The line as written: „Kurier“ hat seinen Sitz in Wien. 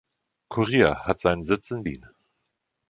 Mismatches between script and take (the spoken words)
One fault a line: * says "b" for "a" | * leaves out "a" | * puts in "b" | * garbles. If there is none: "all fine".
all fine